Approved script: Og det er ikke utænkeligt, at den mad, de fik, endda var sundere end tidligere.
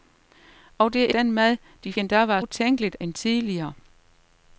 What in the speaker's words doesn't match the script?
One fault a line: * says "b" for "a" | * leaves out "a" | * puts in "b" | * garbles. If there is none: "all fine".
* leaves out "ikke utænkeligt at"
* leaves out "fik"
* says "utænkeligt" for "sundere"